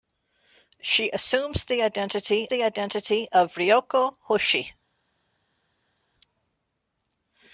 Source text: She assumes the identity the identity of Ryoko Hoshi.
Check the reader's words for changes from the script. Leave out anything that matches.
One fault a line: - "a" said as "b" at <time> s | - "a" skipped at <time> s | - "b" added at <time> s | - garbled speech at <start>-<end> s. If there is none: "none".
none